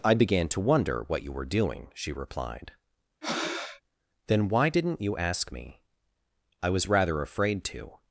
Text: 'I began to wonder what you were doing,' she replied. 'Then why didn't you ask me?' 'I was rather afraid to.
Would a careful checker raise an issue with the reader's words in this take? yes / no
no